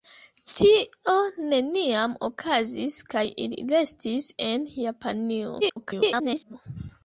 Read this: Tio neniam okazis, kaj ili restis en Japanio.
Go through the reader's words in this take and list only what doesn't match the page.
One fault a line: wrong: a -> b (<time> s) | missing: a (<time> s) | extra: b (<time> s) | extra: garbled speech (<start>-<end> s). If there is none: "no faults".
extra: garbled speech (5.6-6.5 s)